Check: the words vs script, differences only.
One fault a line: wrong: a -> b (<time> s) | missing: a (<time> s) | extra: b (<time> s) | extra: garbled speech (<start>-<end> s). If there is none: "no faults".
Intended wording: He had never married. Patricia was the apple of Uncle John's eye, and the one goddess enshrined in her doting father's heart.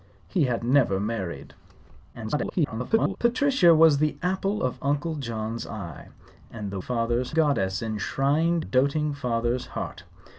extra: garbled speech (2.1-3.2 s)
wrong: one -> father's (6.8 s)
missing: in her (8.7 s)